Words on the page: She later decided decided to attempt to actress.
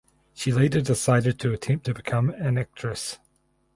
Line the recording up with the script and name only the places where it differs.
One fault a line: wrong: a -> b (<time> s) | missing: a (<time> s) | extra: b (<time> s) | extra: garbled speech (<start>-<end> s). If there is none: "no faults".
missing: decided (1.4 s)
extra: become an (1.9 s)